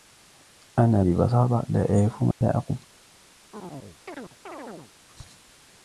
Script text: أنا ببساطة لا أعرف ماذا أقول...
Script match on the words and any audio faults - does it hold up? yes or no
no